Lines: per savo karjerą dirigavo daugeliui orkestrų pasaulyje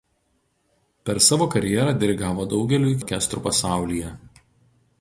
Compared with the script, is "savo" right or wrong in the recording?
right